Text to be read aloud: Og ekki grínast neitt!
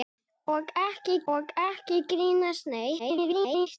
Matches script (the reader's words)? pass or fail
fail